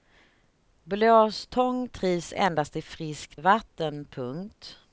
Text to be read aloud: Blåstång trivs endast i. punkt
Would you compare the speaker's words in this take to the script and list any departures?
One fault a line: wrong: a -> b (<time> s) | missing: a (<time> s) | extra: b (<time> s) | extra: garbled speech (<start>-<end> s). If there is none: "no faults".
extra: friskt vatten (2.8 s)